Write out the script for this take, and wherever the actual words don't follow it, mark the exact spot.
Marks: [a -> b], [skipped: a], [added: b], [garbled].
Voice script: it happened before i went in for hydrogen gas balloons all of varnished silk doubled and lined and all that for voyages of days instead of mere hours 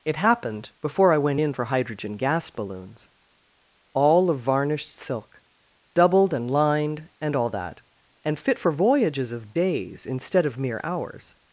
it happened before i went in for hydrogen gas balloons all of varnished silk doubled and lined and all that [added: and fit] for voyages of days instead of mere hours